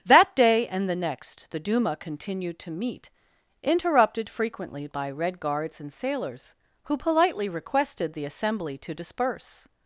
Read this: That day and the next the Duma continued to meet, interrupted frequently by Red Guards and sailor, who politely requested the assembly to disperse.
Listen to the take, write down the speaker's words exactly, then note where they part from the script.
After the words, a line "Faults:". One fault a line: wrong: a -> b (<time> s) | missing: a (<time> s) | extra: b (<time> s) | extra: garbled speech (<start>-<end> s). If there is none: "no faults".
That day and the next the Duma continued to meet, interrupted frequently by Red Guards and sailors, who politely requested the assembly to disperse.
Faults:
wrong: sailor -> sailors (5.9 s)